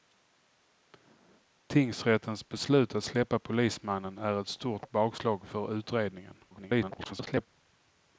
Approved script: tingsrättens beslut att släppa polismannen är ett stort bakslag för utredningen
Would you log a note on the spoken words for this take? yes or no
yes